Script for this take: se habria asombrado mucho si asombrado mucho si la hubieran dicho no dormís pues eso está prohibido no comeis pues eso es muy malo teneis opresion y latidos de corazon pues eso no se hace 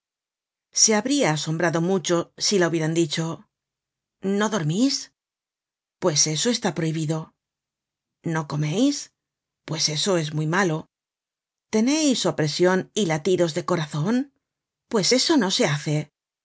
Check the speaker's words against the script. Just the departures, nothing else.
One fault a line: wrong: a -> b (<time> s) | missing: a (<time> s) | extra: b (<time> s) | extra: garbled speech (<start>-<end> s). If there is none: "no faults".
missing: asombrado mucho si (2.6 s)